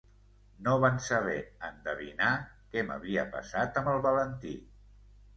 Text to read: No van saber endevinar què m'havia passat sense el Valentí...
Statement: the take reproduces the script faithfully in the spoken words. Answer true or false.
false